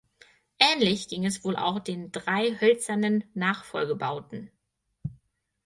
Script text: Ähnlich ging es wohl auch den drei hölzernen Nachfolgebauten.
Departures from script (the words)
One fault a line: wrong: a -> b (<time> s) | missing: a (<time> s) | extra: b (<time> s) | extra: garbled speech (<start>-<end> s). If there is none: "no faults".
no faults